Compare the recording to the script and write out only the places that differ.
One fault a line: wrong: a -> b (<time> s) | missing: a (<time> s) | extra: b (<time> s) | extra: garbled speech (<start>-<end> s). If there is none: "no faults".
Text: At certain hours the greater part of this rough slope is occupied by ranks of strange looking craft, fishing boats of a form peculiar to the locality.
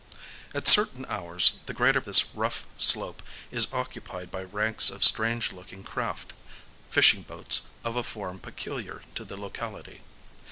missing: part of (2.0 s)